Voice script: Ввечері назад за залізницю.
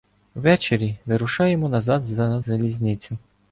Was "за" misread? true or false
false